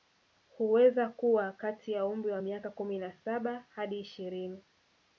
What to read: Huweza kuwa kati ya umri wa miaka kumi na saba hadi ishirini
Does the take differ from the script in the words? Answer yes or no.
no